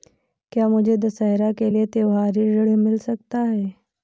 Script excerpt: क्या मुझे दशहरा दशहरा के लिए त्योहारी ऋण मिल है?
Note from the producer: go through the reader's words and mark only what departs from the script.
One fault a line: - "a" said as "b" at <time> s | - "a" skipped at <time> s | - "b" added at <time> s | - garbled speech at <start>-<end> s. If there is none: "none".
- "दशहरा" skipped at 1.5 s
- "सकता" added at 3.0 s